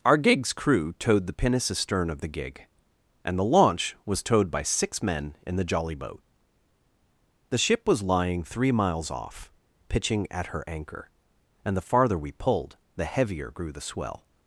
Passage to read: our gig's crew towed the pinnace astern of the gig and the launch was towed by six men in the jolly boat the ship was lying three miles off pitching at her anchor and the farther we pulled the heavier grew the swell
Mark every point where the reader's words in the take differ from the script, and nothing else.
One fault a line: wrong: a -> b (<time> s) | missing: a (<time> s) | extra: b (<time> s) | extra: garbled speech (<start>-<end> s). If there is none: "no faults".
no faults